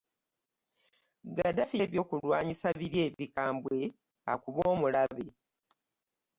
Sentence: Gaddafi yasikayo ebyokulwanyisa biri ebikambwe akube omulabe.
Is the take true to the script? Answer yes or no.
no